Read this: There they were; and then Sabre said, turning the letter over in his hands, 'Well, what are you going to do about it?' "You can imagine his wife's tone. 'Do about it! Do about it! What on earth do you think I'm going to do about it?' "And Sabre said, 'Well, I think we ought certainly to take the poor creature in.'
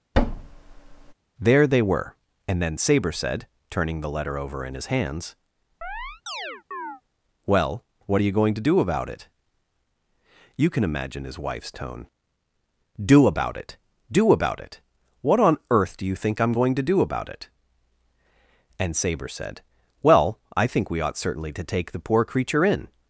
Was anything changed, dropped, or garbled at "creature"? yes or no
no